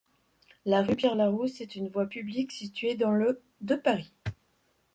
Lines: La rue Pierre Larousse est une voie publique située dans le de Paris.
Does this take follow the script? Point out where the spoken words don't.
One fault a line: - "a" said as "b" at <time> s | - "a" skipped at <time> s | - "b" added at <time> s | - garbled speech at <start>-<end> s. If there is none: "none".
none